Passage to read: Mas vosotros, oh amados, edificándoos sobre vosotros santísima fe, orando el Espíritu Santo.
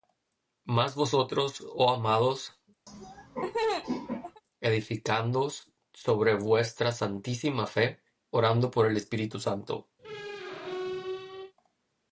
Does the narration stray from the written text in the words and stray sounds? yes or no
yes